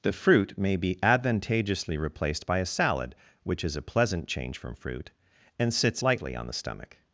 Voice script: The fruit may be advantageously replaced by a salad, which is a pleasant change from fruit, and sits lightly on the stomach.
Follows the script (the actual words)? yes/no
yes